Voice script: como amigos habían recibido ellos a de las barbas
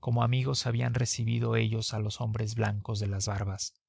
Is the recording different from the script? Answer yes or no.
yes